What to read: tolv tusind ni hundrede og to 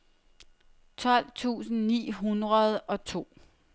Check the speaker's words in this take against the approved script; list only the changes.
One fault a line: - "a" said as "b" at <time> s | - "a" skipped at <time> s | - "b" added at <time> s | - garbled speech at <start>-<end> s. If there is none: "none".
none